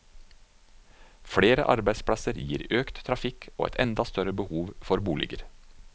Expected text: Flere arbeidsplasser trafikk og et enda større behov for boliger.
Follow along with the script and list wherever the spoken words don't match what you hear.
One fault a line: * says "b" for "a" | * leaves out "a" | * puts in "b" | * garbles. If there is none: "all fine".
* puts in "gir økt"